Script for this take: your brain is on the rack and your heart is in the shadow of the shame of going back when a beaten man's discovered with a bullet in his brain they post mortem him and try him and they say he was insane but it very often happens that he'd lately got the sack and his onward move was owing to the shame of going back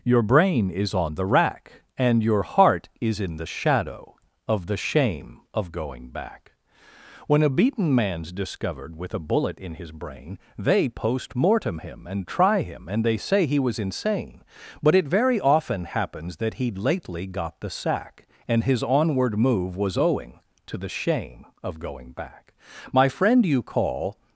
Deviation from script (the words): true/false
true